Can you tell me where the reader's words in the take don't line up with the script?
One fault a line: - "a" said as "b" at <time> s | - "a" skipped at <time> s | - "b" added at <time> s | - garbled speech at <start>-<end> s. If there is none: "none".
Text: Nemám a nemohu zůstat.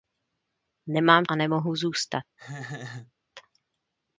none